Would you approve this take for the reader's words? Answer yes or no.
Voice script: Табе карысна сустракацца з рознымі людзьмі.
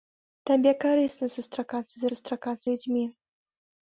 no